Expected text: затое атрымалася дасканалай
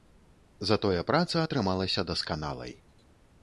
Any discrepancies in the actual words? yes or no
yes